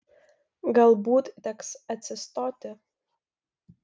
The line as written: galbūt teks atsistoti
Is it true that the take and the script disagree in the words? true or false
false